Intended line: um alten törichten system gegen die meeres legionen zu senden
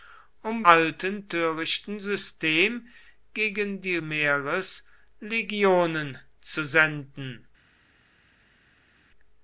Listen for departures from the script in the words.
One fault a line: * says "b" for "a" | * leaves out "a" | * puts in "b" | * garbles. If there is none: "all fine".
all fine